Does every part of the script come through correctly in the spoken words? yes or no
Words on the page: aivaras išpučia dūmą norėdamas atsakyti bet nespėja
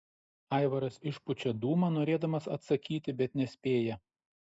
yes